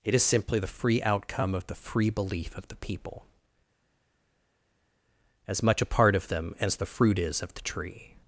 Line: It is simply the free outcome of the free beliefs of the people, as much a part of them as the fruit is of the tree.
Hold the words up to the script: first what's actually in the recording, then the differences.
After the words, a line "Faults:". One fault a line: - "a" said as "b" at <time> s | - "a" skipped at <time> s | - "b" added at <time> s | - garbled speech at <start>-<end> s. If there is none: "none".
It is simply the free outcome of the free belief of the people, as much a part of them as the fruit is of the tree.
Faults:
- "beliefs" said as "belief" at 2.1 s